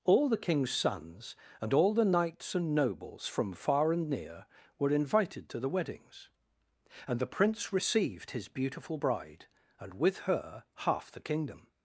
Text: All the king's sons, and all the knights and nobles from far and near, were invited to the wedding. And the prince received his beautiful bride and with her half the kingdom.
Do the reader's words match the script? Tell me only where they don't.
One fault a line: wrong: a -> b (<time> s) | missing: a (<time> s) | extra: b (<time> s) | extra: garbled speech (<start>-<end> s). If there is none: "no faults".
wrong: wedding -> weddings (5.7 s)